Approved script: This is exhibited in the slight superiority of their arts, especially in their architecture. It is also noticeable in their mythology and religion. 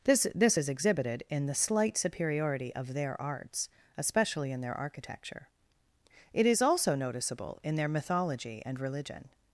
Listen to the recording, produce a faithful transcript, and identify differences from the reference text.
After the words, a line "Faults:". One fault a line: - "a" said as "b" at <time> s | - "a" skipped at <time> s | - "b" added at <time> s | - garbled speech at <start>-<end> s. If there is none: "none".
This this is exhibited in the slight superiority of their arts, especially in their architecture. It is also noticeable in their mythology and religion.
Faults:
- "this" added at 0.3 s